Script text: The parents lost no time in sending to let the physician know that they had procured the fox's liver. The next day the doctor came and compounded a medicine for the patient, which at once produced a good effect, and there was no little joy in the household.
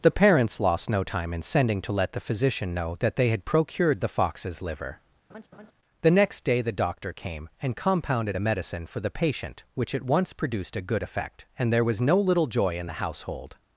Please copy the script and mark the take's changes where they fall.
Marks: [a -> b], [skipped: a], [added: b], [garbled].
The parents lost no time in sending to let the physician know that they had procured the fox's liver. The next day the doctor came and compounded a medicine for the patient, which at once produced a good effect, and there was no little joy in the household.